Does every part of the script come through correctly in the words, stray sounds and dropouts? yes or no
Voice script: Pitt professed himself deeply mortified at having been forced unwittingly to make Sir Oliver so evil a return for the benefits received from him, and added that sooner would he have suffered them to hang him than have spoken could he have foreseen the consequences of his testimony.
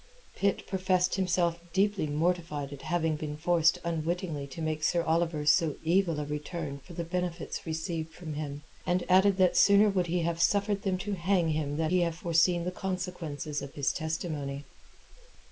no